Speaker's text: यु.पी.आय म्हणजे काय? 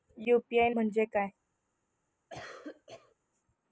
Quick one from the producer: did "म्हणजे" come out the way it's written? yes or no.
yes